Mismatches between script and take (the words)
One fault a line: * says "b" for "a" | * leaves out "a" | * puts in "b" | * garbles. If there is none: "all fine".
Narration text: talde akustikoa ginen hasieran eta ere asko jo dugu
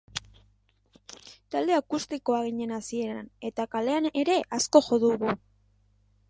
* puts in "kalean"